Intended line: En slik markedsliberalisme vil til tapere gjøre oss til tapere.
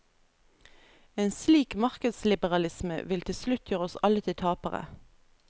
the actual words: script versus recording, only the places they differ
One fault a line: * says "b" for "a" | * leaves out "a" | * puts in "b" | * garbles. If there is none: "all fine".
* says "slutt" for "tapere"
* puts in "alle"